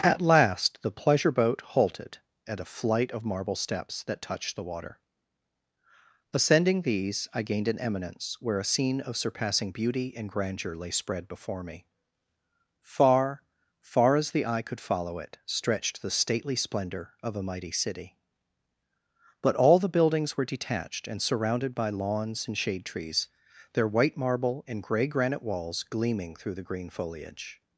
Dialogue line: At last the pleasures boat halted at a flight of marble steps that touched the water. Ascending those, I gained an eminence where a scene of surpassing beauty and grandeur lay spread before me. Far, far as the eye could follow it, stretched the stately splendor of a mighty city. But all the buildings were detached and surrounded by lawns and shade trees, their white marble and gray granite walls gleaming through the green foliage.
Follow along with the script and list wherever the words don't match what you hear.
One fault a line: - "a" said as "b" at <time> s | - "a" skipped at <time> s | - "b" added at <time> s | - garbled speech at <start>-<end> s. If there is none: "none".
- "pleasures" said as "pleasure" at 0.9 s
- "those" said as "these" at 6.8 s